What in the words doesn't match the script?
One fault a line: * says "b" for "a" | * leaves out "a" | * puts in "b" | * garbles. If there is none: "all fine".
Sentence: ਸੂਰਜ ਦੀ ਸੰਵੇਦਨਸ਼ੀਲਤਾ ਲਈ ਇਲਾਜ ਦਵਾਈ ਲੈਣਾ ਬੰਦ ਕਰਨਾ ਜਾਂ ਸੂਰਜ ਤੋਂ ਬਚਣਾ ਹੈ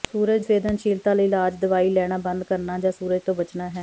* leaves out "ਦੀ"